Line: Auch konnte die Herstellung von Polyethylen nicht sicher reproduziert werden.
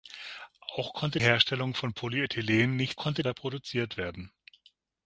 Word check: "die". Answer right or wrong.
wrong